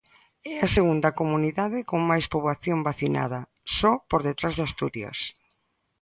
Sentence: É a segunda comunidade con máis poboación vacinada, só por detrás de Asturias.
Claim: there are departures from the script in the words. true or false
false